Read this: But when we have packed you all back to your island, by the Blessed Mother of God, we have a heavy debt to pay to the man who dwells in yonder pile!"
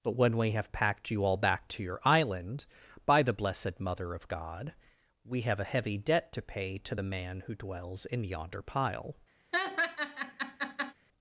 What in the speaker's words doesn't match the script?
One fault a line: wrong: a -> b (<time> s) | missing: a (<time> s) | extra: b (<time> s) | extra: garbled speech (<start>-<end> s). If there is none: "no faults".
no faults